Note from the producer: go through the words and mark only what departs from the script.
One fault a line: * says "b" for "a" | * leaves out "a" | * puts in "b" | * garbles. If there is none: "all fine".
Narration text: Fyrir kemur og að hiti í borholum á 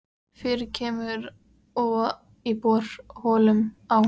* leaves out "að hiti"